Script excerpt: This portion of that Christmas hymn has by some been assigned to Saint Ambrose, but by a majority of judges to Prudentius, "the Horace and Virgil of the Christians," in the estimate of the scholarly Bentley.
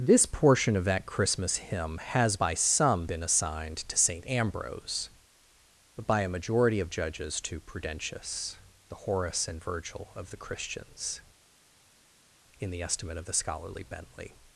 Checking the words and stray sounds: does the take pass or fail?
pass